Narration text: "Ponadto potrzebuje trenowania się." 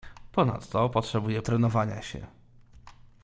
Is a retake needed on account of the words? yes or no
no